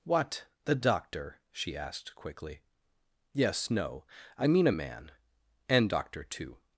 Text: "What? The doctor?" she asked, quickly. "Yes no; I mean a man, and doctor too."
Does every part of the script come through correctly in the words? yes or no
yes